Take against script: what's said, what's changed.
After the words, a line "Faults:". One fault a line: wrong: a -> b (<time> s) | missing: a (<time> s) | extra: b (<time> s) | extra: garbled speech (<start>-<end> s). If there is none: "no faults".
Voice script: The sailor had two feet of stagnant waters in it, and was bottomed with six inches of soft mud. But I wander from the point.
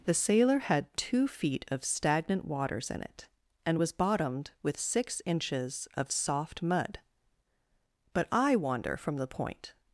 The sailor had two feet of stagnant waters in it, and was bottomed with six inches of soft mud. But I wander from the point.
Faults:
no faults